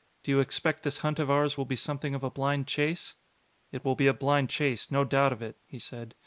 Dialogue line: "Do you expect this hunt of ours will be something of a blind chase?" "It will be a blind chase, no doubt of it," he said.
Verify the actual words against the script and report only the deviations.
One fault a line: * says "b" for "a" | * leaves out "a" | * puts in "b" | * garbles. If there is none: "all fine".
all fine